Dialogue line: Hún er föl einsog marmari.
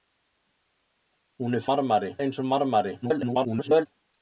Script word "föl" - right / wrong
wrong